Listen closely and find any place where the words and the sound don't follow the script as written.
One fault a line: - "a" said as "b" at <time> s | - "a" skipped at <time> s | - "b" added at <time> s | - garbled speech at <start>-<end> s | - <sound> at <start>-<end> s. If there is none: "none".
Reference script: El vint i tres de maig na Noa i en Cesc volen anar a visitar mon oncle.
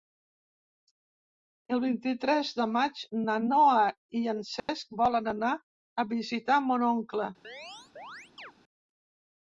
- dropout at 4.6-4.7 s
- chirp at 7.4-8.5 s